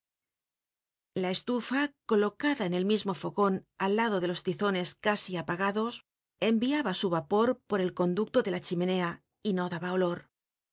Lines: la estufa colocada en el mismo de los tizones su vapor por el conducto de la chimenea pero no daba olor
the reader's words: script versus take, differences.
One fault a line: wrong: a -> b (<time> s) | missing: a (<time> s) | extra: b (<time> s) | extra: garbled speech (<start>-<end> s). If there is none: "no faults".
extra: fogon al lado (3.1 s)
extra: casi apagados enviaba (5.0 s)
wrong: pero -> y (9.4 s)